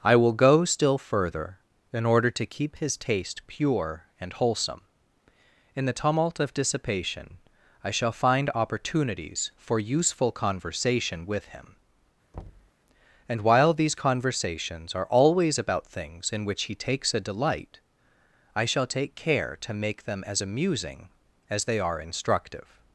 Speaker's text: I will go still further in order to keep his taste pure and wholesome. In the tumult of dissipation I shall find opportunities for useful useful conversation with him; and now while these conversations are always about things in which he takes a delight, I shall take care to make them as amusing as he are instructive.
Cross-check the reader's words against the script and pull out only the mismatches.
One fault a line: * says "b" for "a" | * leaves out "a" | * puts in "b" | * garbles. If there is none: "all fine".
* leaves out "useful"
* leaves out "now"
* says "they" for "he"